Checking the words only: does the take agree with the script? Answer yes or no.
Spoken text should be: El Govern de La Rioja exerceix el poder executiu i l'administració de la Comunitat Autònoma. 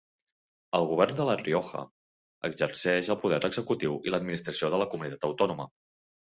yes